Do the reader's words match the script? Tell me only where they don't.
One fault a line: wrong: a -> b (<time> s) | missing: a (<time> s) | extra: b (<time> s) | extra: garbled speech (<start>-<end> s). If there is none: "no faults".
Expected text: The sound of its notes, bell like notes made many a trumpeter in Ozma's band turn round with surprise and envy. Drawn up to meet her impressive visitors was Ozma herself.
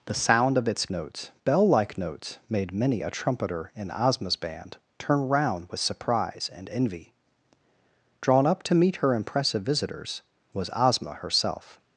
no faults